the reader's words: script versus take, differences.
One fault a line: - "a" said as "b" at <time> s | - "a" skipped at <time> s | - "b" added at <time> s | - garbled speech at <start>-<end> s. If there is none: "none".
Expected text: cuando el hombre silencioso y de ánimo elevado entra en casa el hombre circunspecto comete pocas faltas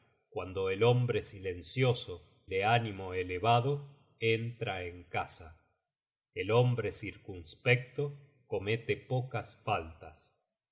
- "y" skipped at 2.5 s